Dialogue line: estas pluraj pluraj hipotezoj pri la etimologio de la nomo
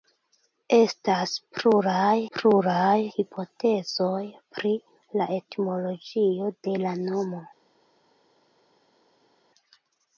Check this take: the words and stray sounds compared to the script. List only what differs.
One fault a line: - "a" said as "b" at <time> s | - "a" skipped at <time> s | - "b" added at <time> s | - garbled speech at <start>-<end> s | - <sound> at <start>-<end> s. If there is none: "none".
none